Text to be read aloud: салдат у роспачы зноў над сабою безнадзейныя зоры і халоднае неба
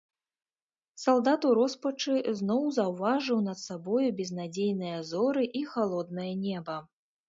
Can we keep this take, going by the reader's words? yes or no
no